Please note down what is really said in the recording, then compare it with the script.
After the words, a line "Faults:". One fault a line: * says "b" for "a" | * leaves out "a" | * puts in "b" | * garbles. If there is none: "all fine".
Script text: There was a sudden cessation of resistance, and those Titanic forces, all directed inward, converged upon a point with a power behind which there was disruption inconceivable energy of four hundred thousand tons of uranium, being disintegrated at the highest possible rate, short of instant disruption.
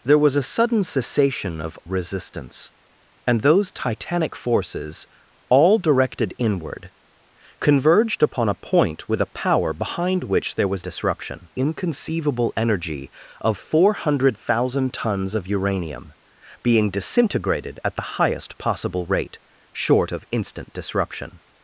There was a sudden cessation of resistance, and those Titanic forces, all directed inward, converged upon a point with a power behind which there was disruption inconceivable energy of four hundred thousand tons of uranium, being disintegrated at the highest possible rate, short of instant disruption.
Faults:
all fine